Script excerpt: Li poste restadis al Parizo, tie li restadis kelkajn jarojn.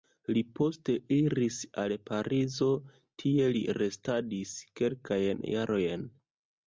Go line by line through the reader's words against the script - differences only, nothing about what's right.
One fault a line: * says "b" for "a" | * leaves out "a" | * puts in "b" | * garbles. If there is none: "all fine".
* says "iris" for "restadis"